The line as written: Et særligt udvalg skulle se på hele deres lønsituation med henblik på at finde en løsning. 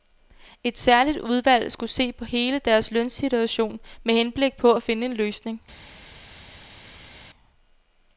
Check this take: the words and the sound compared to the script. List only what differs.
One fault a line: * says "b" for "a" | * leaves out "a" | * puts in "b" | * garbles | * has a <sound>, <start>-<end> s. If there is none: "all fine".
all fine